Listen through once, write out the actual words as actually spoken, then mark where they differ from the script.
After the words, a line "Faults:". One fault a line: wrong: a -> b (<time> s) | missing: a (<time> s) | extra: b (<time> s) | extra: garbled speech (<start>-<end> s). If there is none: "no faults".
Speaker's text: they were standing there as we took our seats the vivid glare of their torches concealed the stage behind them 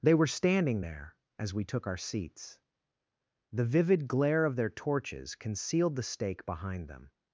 they were standing there as we took our seats the vivid glare of their torches concealed the stake behind them
Faults:
wrong: stage -> stake (6.0 s)